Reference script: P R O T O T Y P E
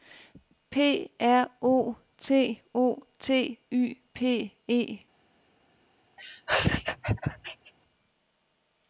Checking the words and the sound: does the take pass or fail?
fail